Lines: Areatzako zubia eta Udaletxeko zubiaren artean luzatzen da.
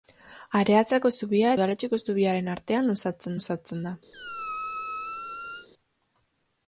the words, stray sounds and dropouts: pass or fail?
fail